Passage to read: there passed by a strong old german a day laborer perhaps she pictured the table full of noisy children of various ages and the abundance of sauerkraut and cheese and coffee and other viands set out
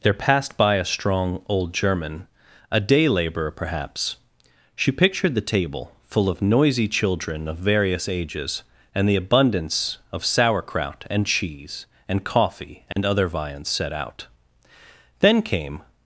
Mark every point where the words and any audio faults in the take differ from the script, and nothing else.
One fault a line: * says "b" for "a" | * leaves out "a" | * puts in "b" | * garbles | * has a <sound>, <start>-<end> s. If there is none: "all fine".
* has a dropout, 12.9-13.0 s
* puts in "then came"